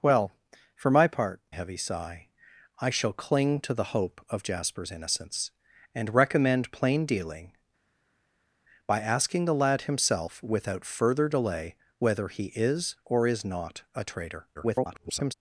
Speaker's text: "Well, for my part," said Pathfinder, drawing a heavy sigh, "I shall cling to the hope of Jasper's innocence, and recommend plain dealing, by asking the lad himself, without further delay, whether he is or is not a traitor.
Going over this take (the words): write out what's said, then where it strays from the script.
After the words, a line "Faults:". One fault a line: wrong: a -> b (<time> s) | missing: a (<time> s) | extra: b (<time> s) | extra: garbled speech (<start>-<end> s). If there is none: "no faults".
"Well, for my part," a heavy sigh, "I shall cling to the hope of Jasper's innocence, and recommend plain dealing, by asking the lad himself, without further delay, whether he is or is not a traitor. [garbled]
Faults:
missing: said Pathfinder drawing (1.4 s)
extra: garbled speech (14.5-15.3 s)